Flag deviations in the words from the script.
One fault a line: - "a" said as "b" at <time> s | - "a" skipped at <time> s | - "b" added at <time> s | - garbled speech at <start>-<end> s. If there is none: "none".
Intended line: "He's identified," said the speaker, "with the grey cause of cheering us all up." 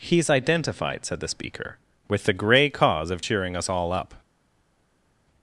none